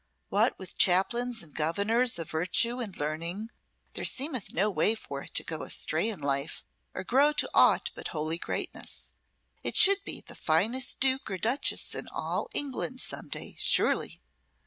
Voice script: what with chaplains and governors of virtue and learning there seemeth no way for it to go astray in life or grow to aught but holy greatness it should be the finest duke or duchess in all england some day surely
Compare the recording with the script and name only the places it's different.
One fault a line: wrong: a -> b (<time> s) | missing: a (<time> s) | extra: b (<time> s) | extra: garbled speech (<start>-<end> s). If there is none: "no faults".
no faults